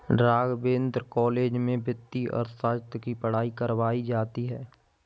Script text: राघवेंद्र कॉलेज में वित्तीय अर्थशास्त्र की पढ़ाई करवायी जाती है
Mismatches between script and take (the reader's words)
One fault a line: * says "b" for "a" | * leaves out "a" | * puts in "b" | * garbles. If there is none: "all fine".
all fine